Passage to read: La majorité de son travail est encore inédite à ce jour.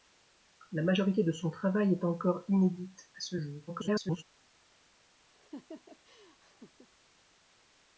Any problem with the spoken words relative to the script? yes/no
yes